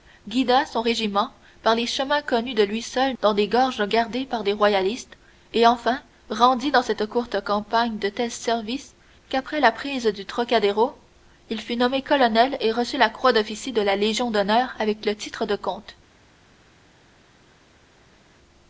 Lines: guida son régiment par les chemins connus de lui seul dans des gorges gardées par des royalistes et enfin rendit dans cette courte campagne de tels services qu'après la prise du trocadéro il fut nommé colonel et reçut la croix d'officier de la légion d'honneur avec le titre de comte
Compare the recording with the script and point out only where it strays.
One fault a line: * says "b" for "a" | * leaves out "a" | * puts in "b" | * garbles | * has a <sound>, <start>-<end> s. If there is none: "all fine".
all fine